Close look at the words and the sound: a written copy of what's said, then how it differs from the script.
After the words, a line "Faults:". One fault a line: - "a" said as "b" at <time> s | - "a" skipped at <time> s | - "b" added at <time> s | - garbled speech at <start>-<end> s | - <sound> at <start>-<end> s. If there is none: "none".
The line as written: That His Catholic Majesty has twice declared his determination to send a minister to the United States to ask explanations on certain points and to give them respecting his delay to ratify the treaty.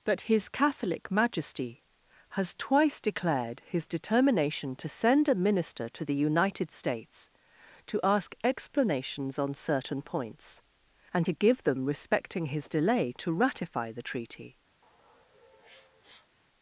That His Catholic Majesty has twice declared his determination to send a minister to the United States to ask explanations on certain points and to give them respecting his delay to ratify the treaty.
Faults:
- sniff at 14.8-16.4 s